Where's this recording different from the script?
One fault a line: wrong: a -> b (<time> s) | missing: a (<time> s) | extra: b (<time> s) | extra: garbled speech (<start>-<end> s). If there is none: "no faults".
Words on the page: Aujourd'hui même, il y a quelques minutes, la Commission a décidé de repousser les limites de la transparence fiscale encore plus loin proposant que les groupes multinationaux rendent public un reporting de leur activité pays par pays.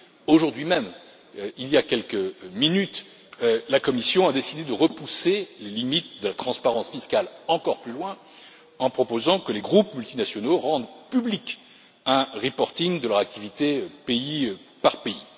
extra: en (8.8 s)